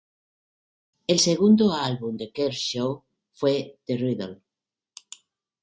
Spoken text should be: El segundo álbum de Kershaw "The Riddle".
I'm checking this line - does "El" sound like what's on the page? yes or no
yes